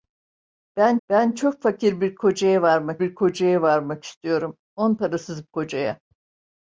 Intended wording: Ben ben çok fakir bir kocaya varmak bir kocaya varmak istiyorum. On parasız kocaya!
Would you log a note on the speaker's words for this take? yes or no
no